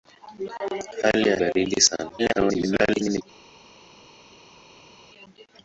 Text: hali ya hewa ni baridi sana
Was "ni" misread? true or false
true